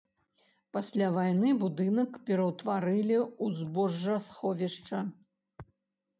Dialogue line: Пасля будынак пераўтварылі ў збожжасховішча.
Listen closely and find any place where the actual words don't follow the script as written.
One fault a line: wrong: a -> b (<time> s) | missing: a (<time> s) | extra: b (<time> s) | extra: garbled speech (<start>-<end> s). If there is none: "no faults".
extra: вайны (1.2 s)